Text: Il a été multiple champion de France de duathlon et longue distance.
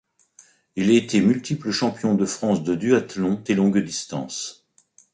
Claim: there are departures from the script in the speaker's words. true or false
false